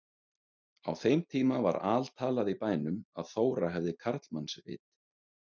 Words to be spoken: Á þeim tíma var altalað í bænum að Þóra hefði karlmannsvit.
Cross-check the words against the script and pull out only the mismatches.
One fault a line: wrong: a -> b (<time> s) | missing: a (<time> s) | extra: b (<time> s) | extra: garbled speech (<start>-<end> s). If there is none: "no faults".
no faults